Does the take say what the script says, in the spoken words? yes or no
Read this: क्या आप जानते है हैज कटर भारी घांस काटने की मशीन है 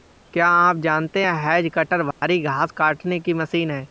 yes